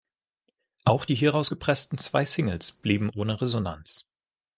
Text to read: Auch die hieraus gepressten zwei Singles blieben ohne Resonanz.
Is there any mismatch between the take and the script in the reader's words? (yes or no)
no